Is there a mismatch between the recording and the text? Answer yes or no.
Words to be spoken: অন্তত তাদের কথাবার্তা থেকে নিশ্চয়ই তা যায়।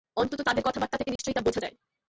yes